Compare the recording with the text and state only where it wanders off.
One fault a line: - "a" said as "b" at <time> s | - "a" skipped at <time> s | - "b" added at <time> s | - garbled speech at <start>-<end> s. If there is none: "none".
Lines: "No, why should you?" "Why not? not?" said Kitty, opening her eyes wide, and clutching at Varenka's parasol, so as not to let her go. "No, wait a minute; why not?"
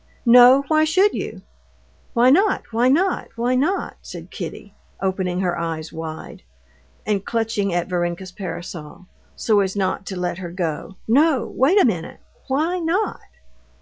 - "why not why" added at 2.7 s